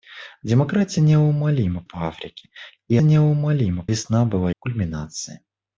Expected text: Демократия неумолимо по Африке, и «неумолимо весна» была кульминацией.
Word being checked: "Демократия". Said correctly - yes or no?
yes